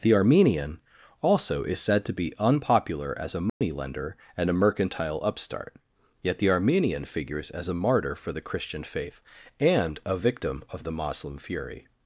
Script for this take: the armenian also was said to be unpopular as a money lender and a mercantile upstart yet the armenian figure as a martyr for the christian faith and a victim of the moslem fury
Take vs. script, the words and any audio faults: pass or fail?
fail